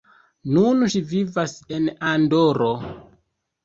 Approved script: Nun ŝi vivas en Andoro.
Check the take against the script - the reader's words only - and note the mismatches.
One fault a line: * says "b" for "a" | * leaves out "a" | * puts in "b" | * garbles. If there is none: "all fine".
all fine